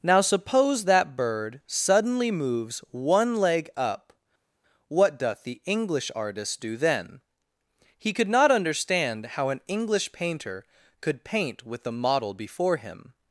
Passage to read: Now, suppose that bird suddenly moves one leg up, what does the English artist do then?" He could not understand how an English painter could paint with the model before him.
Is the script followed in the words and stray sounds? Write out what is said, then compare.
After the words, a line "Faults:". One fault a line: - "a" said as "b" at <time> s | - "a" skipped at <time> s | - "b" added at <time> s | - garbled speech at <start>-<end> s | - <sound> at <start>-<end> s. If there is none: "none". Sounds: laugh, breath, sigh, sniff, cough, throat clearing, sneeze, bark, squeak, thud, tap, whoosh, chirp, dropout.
Now, suppose that bird suddenly moves one leg up, what doth the English artist do then?" He could not understand how an English painter could paint with the model before him.
Faults:
- "does" said as "doth" at 5.2 s